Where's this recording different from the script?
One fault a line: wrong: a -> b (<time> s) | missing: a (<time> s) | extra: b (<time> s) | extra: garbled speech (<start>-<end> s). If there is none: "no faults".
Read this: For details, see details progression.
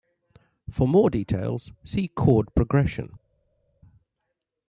extra: more (0.9 s)
wrong: details -> chord (2.1 s)